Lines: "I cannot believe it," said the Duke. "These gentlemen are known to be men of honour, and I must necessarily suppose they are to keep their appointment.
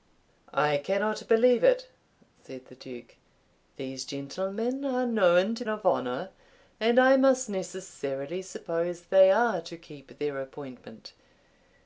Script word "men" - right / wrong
wrong